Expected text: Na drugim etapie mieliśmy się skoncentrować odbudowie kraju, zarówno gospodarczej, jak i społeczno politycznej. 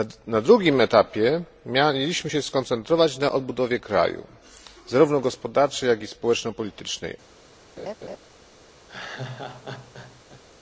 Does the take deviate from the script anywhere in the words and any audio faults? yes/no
yes